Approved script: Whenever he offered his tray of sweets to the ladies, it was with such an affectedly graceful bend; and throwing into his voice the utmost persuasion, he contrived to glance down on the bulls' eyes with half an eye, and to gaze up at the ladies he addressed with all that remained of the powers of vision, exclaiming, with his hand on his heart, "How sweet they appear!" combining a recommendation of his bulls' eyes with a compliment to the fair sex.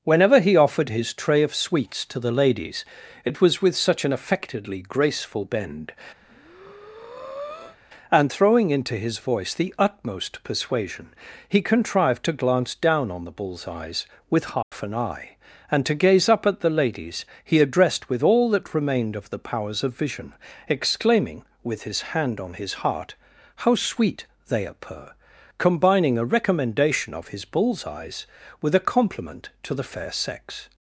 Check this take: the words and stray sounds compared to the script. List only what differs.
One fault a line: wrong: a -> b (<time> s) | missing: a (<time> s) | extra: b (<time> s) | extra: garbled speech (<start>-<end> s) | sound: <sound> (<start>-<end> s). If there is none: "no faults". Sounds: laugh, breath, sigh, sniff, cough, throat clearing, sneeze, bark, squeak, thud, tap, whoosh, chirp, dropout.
sound: breath (6.2-7.8 s)
sound: dropout (14.6-14.7 s)